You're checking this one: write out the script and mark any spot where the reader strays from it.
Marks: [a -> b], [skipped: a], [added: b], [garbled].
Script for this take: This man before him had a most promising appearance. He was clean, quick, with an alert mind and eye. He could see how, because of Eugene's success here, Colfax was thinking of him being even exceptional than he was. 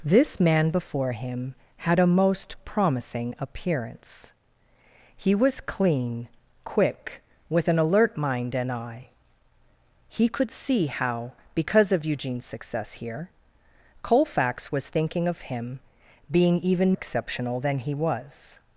This man before him had a most promising appearance. He was clean, quick, with an alert mind and eye. He could see how, because of Eugene's success here, Colfax was thinking of him being even exceptional than he was.